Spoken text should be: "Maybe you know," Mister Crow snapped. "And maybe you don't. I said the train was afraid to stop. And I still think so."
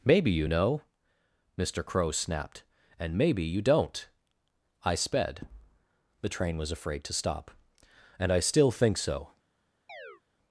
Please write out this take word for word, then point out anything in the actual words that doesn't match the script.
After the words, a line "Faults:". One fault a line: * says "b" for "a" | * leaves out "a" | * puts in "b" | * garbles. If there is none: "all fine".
"Maybe you know," Mister Crow snapped. "And maybe you don't. I sped the train was afraid to stop. And I still think so."
Faults:
* says "sped" for "said"